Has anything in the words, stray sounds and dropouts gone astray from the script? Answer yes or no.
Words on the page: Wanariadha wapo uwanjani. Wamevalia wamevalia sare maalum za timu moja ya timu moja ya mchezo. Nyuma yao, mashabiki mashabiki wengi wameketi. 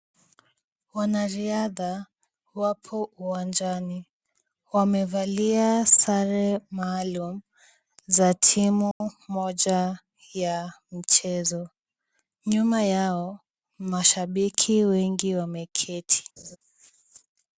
yes